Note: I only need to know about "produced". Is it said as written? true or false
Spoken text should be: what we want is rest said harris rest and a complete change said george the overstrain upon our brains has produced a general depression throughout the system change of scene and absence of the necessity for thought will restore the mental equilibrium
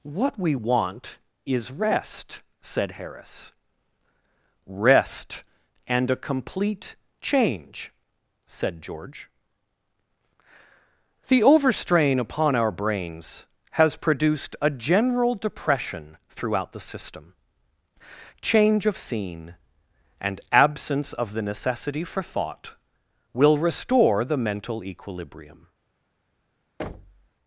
true